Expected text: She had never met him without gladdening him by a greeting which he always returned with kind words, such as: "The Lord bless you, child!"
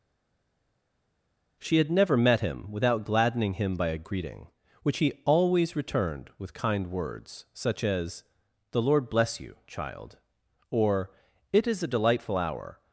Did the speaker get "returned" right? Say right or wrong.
right